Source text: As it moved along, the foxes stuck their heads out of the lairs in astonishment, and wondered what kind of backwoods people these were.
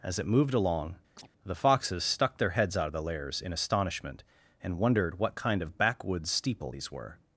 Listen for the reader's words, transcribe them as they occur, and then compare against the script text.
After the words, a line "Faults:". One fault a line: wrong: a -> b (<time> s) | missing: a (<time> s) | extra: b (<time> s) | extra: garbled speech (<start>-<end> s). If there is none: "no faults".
As it moved along, the foxes stuck their heads out of the lairs in astonishment, and wondered what kind of backwoods steeple these were.
Faults:
wrong: people -> steeple (6.3 s)